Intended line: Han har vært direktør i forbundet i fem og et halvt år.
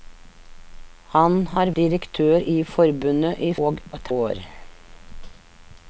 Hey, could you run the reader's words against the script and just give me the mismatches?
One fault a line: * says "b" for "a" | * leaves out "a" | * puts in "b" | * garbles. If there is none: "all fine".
* leaves out "vært"
* leaves out "fem"
* leaves out "halvt"